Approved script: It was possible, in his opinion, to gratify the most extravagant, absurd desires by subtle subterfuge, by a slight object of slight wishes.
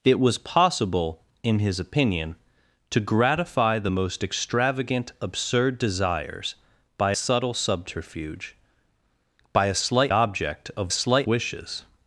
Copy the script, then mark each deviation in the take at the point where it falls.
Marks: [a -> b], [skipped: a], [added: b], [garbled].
It was possible, in his opinion, to gratify the most extravagant, absurd desires by subtle subterfuge, by a slight object of slight wishes.